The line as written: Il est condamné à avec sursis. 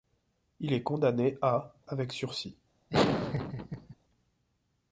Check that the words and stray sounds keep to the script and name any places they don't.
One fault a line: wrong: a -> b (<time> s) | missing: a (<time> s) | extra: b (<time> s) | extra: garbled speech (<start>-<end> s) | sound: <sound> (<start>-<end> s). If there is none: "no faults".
sound: laugh (2.9-3.9 s)